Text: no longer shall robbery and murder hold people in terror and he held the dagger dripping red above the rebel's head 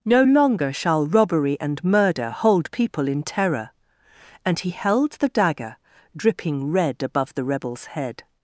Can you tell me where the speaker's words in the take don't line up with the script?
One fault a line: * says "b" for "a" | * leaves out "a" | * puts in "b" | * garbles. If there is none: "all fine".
all fine